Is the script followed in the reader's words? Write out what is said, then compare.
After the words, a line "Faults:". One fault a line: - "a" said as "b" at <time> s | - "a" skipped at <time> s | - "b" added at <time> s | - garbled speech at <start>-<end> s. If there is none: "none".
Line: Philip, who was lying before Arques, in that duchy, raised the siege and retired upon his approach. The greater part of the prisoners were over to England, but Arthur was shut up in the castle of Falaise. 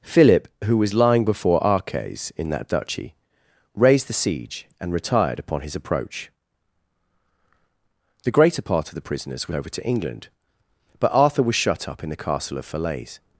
Philip, who was lying before Arques, in that duchy, raised the siege and retired upon his approach. The greater part of the prisoners were over to England, but Arthur was shut up in the castle of Falaise.
Faults:
none